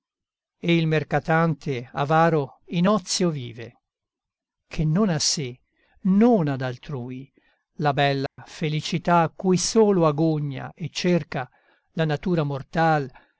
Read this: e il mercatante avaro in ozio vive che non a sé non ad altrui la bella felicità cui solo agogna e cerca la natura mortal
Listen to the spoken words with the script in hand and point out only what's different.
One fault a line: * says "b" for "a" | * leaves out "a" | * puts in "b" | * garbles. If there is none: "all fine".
all fine